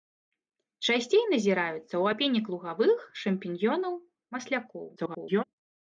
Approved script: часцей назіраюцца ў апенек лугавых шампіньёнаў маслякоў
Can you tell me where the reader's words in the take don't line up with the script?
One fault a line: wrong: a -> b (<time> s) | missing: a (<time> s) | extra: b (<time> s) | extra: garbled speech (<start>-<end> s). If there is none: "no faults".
extra: garbled speech (5.0-5.4 s)